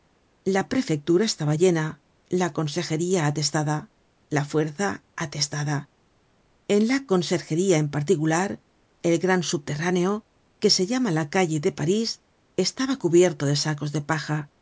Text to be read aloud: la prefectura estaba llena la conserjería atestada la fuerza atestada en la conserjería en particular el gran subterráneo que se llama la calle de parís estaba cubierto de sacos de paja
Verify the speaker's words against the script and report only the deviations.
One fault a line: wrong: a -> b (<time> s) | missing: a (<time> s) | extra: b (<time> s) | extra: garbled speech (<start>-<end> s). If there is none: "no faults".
no faults